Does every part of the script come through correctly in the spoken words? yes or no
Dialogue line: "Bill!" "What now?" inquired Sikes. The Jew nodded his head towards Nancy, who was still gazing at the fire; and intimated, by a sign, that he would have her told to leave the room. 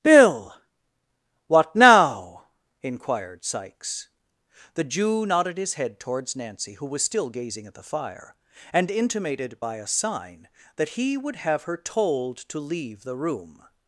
yes